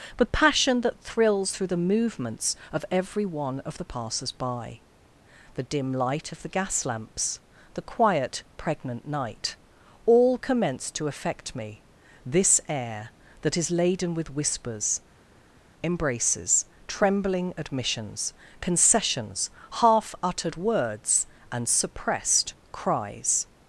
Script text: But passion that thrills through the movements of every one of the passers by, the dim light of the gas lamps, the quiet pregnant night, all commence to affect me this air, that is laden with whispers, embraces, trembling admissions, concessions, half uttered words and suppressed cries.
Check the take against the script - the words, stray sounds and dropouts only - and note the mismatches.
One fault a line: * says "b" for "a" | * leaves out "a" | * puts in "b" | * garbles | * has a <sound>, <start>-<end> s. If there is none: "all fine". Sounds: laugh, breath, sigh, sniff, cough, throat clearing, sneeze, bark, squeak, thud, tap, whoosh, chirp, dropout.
all fine